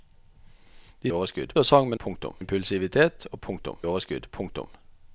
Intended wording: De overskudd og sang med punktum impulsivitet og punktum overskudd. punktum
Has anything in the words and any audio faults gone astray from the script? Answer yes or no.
no